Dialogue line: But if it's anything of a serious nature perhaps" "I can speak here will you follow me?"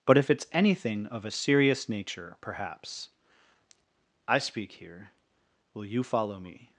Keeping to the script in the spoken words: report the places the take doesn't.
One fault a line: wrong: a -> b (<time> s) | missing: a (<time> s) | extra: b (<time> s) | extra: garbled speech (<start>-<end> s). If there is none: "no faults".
missing: can (4.4 s)